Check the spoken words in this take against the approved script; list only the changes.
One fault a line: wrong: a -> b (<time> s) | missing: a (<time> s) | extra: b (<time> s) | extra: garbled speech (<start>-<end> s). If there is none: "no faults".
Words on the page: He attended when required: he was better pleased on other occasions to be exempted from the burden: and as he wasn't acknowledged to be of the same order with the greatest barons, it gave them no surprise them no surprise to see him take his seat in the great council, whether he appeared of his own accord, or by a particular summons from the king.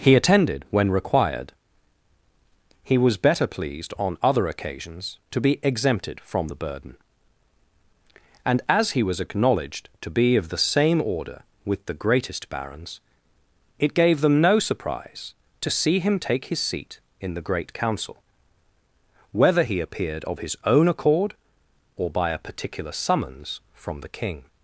wrong: wasn't -> was (9.0 s)
missing: them no surprise (15.3 s)